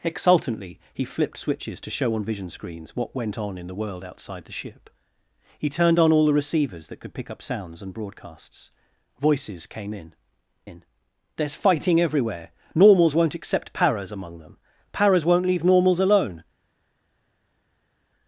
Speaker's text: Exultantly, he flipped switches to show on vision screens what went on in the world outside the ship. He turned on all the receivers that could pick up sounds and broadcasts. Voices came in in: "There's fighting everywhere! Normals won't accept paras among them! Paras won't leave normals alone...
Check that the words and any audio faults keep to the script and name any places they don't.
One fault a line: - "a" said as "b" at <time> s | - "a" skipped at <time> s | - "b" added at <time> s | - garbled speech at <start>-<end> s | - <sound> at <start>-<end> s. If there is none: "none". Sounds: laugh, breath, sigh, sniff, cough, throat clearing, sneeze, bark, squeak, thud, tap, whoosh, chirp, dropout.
none